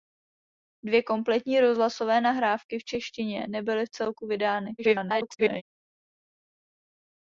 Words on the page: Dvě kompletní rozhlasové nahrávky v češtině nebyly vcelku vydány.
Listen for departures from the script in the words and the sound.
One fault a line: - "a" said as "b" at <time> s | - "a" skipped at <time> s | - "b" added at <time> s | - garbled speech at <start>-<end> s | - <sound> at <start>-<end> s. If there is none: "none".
- garbled speech at 4.8-5.6 s